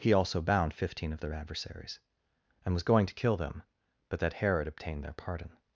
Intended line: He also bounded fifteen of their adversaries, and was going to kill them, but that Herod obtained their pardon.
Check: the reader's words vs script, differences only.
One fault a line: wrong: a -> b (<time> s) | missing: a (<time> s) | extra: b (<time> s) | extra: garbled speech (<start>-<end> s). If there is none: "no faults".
wrong: bounded -> bound (0.4 s)